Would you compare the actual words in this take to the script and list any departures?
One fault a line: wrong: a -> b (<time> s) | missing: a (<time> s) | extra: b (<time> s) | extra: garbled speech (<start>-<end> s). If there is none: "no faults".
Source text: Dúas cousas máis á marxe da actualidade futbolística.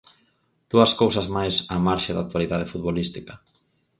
no faults